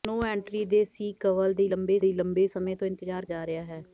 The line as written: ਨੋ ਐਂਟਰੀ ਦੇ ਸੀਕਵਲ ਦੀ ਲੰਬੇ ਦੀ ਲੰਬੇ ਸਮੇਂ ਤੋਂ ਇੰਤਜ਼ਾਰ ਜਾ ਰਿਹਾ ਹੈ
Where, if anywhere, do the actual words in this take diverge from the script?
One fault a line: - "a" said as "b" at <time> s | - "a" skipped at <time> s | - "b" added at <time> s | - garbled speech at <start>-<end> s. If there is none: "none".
none